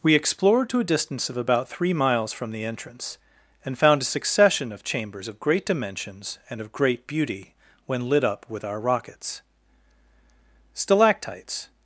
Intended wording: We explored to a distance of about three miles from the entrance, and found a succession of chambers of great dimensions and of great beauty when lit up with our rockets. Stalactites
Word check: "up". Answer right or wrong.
right